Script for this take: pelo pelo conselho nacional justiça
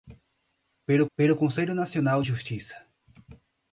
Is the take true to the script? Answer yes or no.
yes